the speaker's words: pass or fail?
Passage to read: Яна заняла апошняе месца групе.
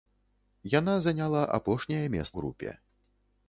pass